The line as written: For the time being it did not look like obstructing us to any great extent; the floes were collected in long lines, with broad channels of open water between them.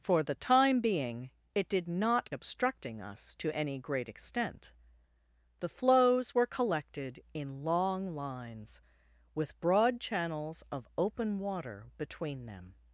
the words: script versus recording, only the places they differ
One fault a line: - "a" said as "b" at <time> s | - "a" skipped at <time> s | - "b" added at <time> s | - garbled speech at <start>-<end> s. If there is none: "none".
- "look like" skipped at 2.3 s